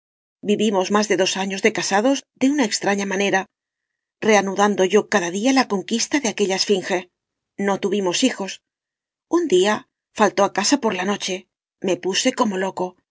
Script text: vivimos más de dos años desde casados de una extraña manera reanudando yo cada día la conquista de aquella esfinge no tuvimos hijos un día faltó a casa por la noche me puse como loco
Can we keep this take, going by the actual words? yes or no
no